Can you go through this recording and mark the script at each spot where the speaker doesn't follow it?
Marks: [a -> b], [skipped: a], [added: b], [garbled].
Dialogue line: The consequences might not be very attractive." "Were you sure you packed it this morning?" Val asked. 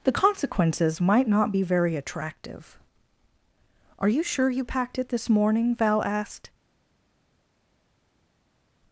The consequences might not be very attractive." ["Were -> Are] you sure you packed it this morning?" Val asked.